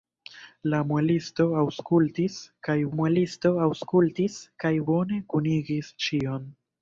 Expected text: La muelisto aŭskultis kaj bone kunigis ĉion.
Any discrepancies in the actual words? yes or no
yes